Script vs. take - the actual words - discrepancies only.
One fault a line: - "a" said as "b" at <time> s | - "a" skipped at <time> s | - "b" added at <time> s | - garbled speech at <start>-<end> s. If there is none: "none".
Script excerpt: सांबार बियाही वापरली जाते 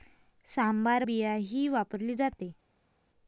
none